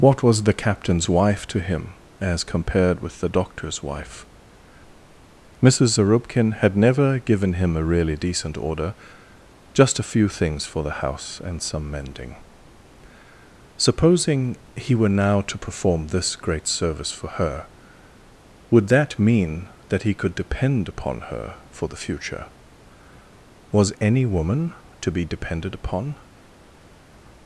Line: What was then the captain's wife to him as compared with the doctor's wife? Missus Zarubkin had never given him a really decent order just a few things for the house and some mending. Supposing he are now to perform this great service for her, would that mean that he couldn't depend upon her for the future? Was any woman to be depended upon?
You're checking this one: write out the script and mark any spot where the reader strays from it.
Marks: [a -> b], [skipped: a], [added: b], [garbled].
What was [skipped: then] the captain's wife to him as compared with the doctor's wife? Missus Zarubkin had never given him a really decent order just a few things for the house and some mending. Supposing he [are -> were] now to perform this great service for her, would that mean that he [couldn't -> could] depend upon her for the future? Was any woman to be depended upon?